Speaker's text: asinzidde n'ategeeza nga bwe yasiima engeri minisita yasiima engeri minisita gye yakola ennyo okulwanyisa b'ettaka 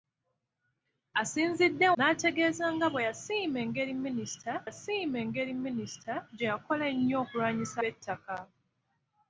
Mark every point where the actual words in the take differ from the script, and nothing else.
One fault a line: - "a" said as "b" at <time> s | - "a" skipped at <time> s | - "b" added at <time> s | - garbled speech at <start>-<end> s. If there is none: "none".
none